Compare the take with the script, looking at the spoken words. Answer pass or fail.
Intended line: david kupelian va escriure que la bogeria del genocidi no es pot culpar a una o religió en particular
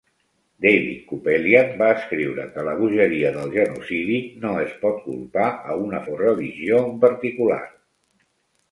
pass